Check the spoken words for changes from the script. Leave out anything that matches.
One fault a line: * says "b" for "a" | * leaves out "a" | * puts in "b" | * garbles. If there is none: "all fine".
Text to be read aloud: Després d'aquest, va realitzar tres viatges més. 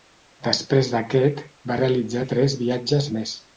all fine